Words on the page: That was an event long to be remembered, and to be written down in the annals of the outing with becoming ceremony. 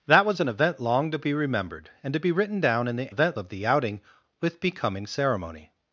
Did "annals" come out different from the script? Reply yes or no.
yes